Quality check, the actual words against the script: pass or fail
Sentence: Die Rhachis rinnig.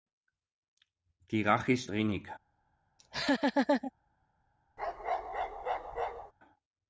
pass